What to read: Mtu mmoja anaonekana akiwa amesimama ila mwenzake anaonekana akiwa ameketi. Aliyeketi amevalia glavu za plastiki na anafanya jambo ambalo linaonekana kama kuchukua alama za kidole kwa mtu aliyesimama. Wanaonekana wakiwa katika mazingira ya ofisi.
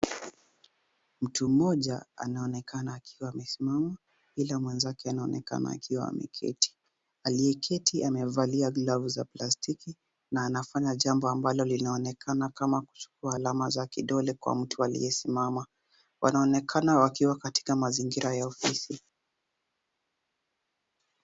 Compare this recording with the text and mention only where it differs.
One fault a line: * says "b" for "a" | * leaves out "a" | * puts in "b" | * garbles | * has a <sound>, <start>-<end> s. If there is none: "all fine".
all fine